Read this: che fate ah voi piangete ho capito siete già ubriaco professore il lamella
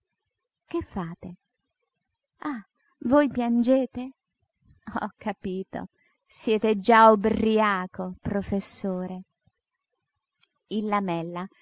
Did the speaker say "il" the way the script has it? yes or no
yes